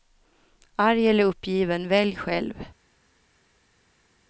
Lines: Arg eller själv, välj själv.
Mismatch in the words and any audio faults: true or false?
true